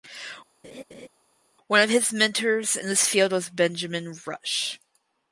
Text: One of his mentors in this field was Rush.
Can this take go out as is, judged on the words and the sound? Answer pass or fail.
fail